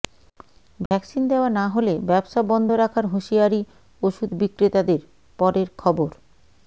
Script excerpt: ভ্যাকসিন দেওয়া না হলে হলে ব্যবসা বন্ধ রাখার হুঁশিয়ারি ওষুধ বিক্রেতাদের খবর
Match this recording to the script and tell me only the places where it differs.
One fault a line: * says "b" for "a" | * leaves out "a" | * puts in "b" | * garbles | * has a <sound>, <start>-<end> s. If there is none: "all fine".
* has a dropout, 0.9-0.9 s
* leaves out "হলে"
* puts in "পরের"